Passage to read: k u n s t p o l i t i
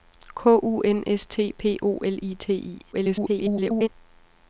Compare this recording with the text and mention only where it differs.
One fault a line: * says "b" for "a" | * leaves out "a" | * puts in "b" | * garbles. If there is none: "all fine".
* garbles